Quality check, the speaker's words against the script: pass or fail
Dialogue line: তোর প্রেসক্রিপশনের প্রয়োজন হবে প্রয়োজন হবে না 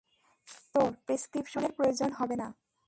fail